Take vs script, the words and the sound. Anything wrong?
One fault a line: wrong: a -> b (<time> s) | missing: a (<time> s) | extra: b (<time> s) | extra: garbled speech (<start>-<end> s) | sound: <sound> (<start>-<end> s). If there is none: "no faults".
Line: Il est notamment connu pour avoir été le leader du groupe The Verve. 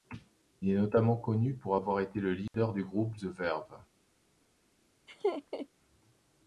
sound: dropout (2.5-2.5 s)
sound: laugh (5.1-5.7 s)